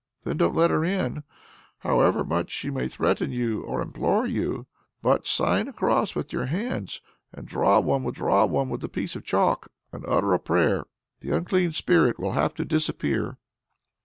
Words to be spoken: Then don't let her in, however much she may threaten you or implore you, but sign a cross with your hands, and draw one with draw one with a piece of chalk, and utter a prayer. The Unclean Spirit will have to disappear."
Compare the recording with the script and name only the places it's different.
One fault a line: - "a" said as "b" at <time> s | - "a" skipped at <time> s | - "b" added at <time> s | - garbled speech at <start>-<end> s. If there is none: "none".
none